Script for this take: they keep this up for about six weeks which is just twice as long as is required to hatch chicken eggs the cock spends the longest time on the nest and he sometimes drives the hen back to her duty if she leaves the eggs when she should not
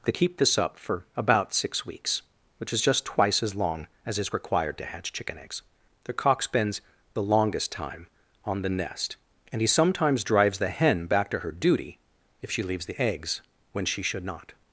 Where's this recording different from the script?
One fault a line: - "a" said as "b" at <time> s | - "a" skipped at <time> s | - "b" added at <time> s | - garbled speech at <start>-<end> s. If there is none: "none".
none